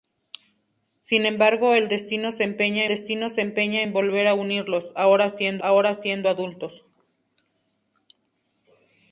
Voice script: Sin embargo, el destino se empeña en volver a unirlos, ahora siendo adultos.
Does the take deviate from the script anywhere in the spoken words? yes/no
yes